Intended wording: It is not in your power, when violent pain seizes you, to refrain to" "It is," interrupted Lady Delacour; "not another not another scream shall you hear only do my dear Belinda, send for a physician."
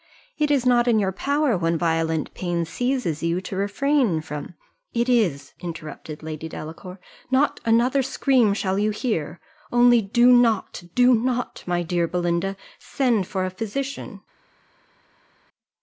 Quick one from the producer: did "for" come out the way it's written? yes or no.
yes